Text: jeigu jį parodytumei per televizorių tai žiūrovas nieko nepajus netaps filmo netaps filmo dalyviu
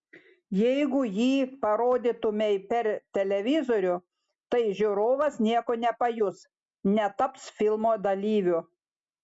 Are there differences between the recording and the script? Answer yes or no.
yes